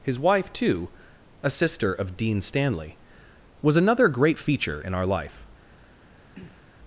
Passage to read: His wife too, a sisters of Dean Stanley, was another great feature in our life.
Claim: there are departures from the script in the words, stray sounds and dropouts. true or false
true